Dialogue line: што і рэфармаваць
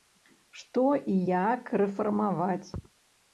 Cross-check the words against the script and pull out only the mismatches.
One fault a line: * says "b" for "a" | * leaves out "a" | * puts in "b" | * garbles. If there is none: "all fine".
* puts in "як"